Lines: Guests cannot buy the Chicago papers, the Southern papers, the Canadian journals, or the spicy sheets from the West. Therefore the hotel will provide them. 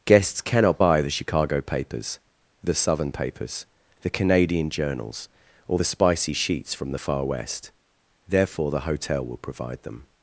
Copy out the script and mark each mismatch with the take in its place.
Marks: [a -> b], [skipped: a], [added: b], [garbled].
Guests cannot buy the Chicago papers, the Southern papers, the Canadian journals, or the spicy sheets from the [added: Far] West. Therefore the hotel will provide them.